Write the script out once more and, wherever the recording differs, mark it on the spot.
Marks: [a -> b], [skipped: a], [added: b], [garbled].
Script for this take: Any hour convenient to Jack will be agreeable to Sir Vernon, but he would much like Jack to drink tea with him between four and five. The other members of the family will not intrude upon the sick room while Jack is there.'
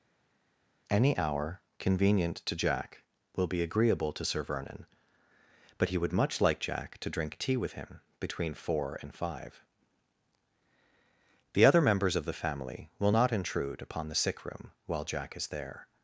Any hour convenient to Jack will be agreeable to Sir Vernon, but he would much like Jack to drink tea with him between four and five. The other members of the family will not intrude upon the sick room while Jack is there.'